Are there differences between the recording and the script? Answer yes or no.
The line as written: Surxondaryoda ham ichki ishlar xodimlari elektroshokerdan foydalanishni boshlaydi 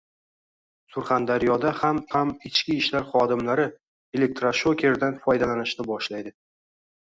yes